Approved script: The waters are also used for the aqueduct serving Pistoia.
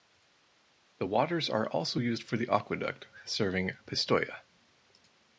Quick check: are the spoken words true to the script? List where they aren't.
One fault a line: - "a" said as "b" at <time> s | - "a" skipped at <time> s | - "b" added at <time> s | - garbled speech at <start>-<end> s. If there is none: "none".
none